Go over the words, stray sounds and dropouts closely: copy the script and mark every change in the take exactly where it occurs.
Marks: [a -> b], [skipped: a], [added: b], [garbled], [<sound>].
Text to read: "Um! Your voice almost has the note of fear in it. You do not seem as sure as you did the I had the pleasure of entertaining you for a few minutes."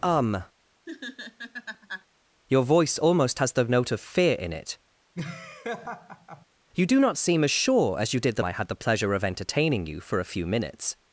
"Um! [laugh] Your voice almost has the note of fear in it. [laugh] You do not seem as sure as you did the I had the pleasure of entertaining you for a few minutes."